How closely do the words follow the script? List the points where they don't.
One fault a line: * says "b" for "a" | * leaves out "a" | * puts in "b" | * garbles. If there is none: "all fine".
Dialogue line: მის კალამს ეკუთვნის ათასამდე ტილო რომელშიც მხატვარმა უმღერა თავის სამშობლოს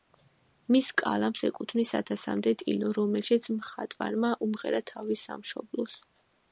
all fine